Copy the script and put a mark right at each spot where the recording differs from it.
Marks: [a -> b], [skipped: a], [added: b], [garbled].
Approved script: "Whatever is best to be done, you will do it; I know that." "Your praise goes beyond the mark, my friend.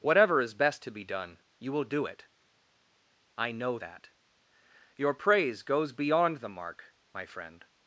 "Whatever is best to be done, you will do it; I know that." "Your praise goes beyond the mark, my friend.